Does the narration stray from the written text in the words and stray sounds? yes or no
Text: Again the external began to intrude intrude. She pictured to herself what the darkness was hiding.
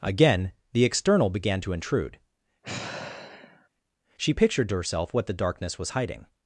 yes